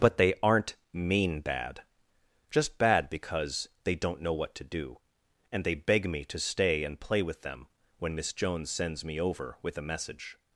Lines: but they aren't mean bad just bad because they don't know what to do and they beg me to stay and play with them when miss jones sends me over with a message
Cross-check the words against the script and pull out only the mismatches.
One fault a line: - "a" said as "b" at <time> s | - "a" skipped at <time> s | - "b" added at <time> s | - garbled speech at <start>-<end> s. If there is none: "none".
none